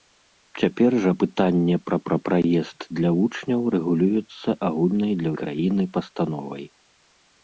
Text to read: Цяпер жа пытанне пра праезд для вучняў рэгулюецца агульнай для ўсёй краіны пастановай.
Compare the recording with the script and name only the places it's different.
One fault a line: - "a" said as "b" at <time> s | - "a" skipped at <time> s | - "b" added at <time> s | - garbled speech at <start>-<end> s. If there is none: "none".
- "пра" added at 2.1 s
- "ўсёй" skipped at 5.3 s